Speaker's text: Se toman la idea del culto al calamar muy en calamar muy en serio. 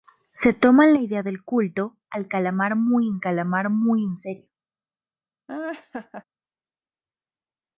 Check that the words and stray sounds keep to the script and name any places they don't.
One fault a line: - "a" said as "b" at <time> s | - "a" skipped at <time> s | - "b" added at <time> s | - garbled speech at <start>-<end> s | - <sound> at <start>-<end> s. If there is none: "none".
- laugh at 5.5-6.2 s